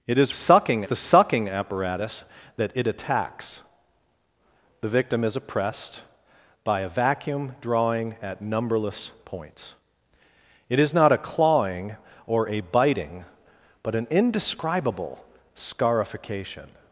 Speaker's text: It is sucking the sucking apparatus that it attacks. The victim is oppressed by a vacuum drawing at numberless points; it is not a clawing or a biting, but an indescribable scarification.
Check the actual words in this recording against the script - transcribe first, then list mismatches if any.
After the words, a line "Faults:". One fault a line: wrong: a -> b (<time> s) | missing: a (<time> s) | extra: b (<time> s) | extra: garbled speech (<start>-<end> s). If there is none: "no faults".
It is sucking the sucking apparatus that it attacks. The victim is oppressed by a vacuum drawing at numberless points; it is not a clawing or a biting, but an indescribable scarification.
Faults:
no faults